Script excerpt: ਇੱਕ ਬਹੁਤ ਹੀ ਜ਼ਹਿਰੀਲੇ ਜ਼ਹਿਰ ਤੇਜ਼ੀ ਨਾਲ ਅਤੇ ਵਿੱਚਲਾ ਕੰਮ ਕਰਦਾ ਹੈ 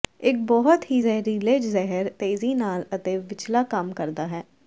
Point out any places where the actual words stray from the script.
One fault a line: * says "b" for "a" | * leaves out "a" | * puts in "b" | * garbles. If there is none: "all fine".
all fine